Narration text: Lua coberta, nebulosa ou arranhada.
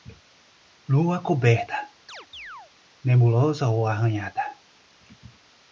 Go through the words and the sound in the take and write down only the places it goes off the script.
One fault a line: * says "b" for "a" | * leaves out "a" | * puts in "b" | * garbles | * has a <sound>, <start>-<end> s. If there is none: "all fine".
* has a chirp, 2.1-2.7 s